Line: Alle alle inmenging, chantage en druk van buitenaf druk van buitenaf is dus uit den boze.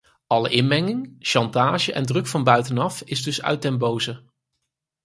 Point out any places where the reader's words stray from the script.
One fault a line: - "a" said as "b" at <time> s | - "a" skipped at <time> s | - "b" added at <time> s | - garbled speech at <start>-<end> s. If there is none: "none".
- "alle" skipped at 0.5 s
- "druk van buitenaf" skipped at 3.0 s